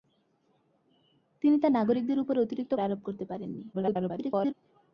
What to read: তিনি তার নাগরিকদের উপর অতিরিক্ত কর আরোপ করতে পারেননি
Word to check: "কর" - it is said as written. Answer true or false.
false